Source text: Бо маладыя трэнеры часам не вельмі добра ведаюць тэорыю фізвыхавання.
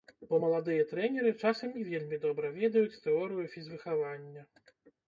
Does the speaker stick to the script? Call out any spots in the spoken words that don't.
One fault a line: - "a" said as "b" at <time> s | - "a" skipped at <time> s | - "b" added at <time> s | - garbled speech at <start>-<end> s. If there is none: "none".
none